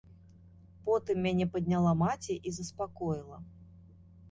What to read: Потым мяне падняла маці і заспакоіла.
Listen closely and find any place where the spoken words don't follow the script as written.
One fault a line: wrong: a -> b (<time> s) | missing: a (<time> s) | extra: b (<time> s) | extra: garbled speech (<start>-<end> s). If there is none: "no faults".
no faults